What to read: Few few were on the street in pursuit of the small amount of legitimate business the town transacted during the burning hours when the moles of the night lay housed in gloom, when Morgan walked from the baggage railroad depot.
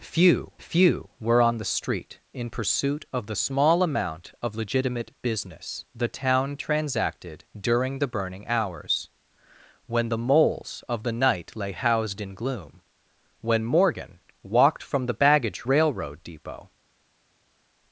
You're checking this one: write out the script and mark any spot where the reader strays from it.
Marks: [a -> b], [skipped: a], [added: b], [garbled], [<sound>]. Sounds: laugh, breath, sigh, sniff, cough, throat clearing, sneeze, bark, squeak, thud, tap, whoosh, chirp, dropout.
Few few were on the street in pursuit of the small amount of legitimate business the town transacted during the burning hours when the moles of the night lay housed in gloom, when Morgan walked from the baggage railroad depot.